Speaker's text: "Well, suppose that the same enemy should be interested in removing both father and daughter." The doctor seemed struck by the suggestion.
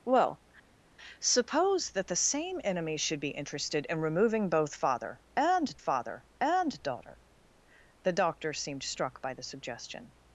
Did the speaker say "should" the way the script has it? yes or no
yes